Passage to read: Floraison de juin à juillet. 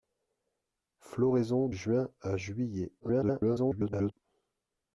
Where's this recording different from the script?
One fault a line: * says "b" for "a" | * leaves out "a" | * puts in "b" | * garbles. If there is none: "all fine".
* leaves out "de"
* garbles